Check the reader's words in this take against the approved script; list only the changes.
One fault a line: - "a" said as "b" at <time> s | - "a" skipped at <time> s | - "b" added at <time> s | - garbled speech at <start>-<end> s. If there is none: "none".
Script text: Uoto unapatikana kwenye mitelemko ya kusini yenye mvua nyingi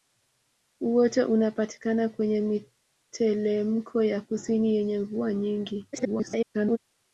- garbled speech at 5.9-6.8 s